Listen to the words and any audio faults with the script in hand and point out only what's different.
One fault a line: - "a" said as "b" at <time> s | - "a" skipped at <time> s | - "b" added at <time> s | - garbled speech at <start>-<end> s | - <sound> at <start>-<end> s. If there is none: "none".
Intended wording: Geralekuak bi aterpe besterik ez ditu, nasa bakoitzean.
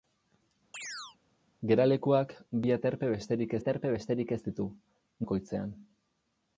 - chirp at 0.7-1.2 s
- "aterpe besterik" added at 3.6 s
- "nasa" skipped at 4.7 s